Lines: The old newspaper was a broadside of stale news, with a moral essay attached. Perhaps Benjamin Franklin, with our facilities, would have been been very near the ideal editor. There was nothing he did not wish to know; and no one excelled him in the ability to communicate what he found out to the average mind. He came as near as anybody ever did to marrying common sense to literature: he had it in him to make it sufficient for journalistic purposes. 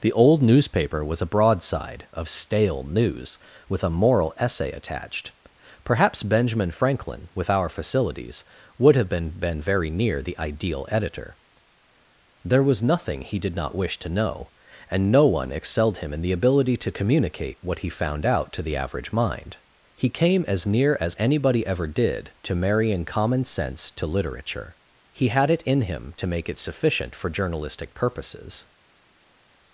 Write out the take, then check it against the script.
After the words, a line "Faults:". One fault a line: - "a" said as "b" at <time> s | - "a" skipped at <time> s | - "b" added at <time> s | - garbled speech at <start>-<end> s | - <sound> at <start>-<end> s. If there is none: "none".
The old newspaper was a broadside of stale news, with a moral essay attached. Perhaps Benjamin Franklin, with our facilities, would have been been very near the ideal editor. There was nothing he did not wish to know; and no one excelled him in the ability to communicate what he found out to the average mind. He came as near as anybody ever did to marrying common sense to literature: he had it in him to make it sufficient for journalistic purposes.
Faults:
none